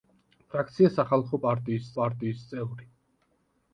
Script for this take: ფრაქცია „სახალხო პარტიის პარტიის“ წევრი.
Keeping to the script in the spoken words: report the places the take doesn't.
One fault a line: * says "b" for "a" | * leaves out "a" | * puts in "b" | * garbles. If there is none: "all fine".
all fine